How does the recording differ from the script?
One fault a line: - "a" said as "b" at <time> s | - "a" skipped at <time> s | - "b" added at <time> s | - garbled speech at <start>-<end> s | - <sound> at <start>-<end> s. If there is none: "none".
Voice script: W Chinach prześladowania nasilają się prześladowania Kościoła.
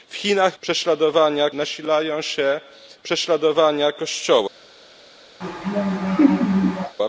- laugh at 5.4-7.0 s